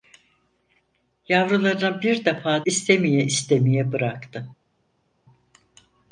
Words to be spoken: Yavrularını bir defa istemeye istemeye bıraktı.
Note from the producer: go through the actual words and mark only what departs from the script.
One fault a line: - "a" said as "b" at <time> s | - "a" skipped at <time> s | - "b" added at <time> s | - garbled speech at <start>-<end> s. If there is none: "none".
none